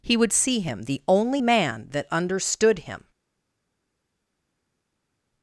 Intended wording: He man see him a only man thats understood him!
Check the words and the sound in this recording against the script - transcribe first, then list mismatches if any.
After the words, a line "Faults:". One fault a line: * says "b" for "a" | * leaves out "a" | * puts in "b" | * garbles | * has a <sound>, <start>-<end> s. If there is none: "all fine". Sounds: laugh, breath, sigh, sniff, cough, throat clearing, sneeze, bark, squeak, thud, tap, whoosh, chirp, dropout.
He would see him the only man that understood him!
Faults:
* says "would" for "man"
* says "the" for "a"
* says "that" for "thats"